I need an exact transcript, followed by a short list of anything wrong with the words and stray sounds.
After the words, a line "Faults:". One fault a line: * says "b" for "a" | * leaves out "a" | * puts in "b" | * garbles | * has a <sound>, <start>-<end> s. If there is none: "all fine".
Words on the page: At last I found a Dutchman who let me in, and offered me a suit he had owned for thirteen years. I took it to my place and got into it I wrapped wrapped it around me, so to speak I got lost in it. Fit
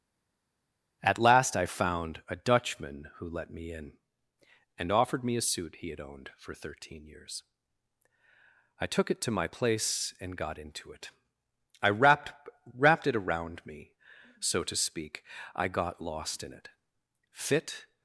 At last I found a Dutchman who let me in, and offered me a suit he had owned for thirteen years. I took it to my place and got into it I wrapped wrapped it around me, so to speak I got lost in it. Fit
Faults:
all fine